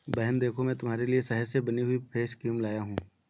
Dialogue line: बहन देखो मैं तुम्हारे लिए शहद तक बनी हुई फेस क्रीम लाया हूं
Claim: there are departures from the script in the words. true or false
true